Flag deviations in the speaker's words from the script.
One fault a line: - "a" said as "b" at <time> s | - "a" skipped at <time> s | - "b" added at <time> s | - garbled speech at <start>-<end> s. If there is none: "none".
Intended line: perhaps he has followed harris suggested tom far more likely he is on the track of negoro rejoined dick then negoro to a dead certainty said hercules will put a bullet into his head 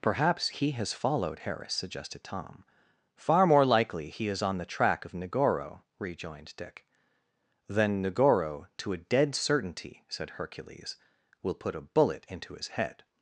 none